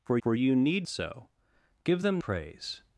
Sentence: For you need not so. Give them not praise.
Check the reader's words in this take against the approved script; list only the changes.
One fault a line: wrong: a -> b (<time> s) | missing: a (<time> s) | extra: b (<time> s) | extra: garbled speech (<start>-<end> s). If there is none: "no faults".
extra: for (0.2 s)
missing: not (0.9 s)
missing: not (2.2 s)